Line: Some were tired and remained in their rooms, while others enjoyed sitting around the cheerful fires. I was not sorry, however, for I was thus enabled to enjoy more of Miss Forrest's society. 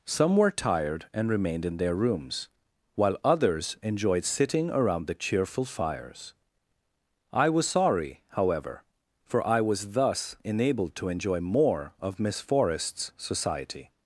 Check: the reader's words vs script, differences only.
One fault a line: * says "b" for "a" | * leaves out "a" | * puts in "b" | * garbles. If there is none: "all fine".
* leaves out "not"